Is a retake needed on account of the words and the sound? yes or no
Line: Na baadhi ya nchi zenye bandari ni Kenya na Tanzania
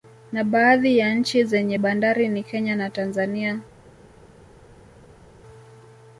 no